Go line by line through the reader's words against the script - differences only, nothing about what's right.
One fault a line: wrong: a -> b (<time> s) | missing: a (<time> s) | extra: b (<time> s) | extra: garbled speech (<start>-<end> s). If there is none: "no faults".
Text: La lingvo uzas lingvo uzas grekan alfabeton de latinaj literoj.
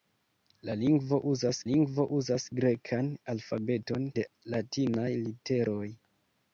no faults